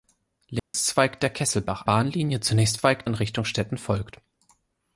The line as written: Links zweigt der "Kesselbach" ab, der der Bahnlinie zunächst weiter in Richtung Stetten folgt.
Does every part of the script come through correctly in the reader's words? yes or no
no